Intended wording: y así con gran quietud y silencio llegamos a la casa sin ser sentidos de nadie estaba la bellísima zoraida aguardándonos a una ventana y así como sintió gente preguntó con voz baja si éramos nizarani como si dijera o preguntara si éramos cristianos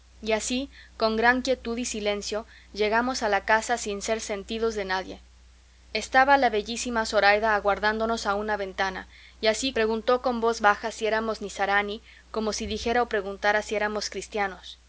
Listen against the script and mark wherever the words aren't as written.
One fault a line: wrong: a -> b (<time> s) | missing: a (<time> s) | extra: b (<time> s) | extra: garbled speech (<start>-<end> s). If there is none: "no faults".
missing: como sintió gente (9.7 s)